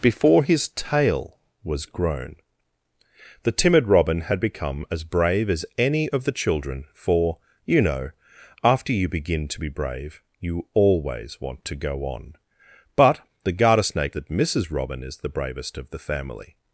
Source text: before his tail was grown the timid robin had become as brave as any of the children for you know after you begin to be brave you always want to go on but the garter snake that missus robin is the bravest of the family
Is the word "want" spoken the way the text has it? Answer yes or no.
yes